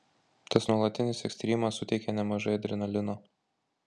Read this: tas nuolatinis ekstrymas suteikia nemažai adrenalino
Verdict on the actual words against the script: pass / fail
pass